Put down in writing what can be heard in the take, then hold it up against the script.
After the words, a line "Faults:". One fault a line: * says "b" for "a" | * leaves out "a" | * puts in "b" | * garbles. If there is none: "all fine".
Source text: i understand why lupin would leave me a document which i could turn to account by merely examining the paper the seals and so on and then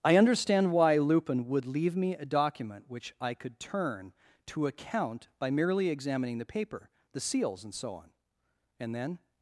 i understand why lupin would leave me a document which i could turn to account by merely examining the paper the seals and so on and then
Faults:
all fine